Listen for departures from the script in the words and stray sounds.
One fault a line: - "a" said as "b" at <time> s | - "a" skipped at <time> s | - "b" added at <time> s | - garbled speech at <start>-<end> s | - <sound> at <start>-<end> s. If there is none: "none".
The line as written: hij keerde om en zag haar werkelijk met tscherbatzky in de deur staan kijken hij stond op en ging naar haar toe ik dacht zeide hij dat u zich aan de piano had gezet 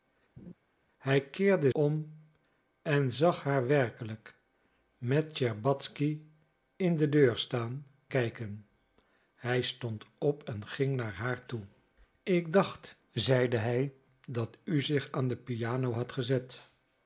- laugh at 0.4-0.5 s